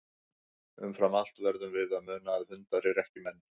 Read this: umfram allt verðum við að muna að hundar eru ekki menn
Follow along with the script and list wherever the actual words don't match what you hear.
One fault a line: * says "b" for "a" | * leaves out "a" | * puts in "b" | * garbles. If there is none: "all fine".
all fine